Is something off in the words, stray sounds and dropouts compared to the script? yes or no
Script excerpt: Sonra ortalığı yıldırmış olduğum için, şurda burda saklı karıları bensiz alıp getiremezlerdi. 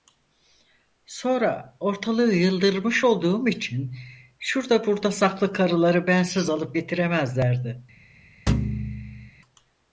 yes